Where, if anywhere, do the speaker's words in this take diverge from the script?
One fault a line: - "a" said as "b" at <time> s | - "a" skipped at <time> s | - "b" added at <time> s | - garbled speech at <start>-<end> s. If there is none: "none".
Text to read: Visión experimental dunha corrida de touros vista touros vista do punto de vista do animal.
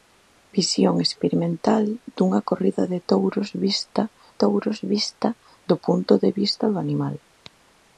none